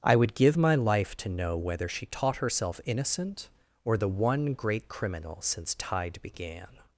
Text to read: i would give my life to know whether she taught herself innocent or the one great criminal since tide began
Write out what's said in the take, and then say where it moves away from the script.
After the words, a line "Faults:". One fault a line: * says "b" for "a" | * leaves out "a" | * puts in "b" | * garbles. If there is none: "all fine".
i would give my life to know whether she taught herself innocent or the one great criminal since tide began
Faults:
all fine